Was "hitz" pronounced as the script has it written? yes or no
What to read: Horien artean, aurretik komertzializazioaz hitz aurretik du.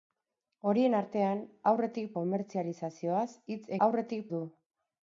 yes